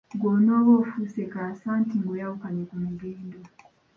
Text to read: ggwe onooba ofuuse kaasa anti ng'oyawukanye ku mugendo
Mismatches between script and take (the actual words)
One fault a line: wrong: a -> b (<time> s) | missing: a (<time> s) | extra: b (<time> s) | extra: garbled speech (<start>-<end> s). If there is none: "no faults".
no faults